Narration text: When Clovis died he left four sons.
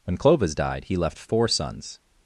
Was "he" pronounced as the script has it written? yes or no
yes